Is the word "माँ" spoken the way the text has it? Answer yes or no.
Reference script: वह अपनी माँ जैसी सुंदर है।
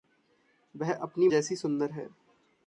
no